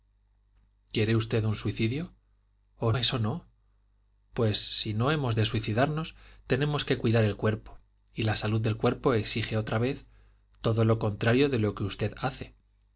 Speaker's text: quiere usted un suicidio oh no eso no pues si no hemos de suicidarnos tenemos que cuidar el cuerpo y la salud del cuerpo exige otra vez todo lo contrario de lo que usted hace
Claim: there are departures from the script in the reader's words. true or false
true